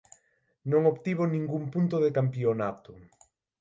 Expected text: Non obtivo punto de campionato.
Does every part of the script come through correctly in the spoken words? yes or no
no